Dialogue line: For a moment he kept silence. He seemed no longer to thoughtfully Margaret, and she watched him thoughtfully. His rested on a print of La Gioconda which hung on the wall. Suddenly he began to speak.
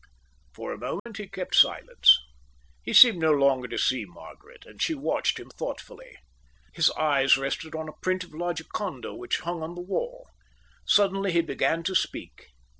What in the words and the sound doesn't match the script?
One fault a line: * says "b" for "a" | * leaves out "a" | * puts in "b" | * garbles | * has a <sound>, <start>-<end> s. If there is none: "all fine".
* has a dropout, 1.0-1.1 s
* says "see" for "thoughtfully"
* puts in "eyes"